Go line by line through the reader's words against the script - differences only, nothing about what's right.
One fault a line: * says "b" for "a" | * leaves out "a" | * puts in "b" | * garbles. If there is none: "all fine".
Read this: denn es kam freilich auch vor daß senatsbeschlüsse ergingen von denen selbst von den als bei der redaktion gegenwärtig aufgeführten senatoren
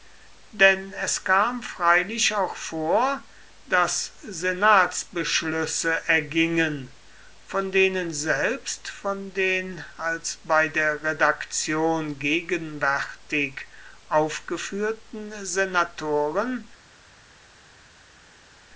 all fine